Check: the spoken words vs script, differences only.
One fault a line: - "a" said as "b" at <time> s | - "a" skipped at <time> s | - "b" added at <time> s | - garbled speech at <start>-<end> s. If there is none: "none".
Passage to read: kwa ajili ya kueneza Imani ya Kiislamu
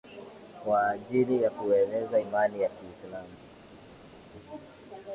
none